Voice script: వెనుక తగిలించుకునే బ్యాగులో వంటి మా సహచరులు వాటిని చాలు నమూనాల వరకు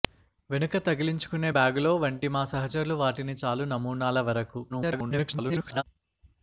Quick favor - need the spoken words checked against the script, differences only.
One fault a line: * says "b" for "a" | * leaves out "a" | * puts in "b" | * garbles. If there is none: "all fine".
* garbles